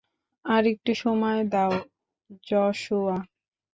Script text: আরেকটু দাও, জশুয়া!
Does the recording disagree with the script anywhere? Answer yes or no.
yes